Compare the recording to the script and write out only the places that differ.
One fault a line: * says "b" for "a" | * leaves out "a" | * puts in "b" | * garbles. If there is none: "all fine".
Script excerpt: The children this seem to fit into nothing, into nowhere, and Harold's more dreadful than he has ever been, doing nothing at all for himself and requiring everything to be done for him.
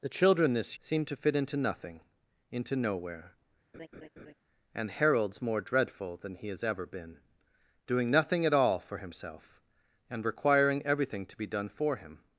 all fine